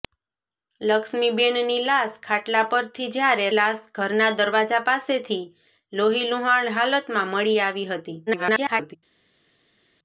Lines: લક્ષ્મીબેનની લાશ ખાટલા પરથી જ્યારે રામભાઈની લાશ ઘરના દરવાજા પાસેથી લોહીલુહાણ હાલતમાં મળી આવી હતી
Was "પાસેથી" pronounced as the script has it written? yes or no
yes